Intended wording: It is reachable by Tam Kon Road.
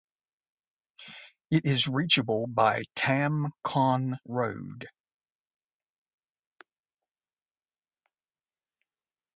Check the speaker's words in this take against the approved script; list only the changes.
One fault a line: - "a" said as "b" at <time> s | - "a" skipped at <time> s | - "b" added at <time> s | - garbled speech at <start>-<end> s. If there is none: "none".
none